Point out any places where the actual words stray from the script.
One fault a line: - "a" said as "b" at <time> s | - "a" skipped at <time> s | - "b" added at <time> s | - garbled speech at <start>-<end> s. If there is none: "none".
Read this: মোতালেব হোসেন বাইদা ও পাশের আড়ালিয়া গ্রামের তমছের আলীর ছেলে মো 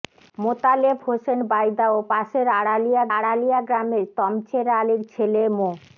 - "আড়ালিয়া" added at 3.2 s